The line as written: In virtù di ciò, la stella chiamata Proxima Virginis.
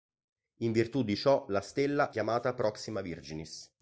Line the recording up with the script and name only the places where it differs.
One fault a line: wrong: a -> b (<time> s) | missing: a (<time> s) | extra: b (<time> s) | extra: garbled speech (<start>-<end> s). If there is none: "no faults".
no faults